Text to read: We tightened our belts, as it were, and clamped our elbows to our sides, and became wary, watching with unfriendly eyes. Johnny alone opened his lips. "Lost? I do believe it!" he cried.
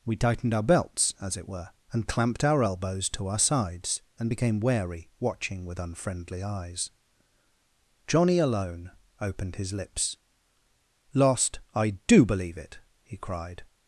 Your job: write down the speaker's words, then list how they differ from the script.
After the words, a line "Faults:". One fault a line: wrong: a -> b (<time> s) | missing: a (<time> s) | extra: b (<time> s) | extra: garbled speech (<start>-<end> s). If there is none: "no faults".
We tightened our belts, as it were, and clamped our elbows to our sides, and became wary, watching with unfriendly eyes. Johnny alone opened his lips. "Lost? I do believe it!" he cried.
Faults:
no faults